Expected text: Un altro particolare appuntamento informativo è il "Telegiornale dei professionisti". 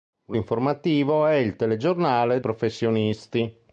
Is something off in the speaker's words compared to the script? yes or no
yes